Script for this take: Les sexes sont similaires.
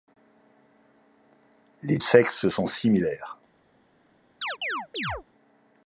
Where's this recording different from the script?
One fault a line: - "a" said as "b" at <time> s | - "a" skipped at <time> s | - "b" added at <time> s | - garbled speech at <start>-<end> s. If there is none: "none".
none